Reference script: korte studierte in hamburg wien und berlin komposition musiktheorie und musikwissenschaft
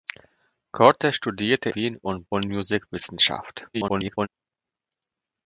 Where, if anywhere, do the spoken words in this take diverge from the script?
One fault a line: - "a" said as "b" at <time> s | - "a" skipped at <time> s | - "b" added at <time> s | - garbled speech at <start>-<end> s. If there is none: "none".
- "in hamburg" skipped at 1.7 s
- "berlin komposition musiktheorie" skipped at 2.3 s
- garbled speech at 3.7-4.3 s